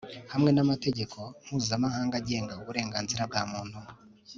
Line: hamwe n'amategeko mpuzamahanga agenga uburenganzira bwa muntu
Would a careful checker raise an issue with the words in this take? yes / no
no